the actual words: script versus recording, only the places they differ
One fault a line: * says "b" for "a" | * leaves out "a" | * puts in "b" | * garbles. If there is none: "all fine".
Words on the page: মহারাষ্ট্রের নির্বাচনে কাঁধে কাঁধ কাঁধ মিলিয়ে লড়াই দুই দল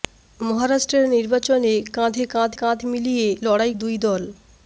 all fine